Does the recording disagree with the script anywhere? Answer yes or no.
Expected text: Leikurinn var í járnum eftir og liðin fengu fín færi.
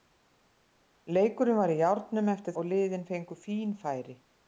no